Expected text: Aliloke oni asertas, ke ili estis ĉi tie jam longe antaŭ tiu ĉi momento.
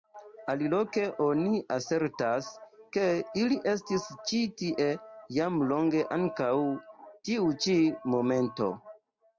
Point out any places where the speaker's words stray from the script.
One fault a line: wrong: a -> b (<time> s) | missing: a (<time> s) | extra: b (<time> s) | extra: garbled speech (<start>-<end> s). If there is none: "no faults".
no faults